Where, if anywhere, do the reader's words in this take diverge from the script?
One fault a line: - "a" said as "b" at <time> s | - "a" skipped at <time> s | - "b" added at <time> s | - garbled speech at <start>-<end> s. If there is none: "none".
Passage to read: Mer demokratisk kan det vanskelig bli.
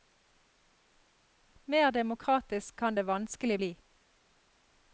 none